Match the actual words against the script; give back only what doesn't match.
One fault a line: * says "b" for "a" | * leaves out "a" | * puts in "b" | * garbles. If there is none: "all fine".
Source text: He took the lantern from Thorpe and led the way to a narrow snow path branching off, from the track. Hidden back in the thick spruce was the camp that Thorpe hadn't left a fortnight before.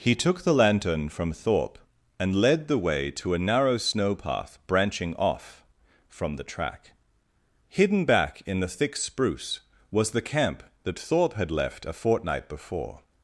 * says "had" for "hadn't"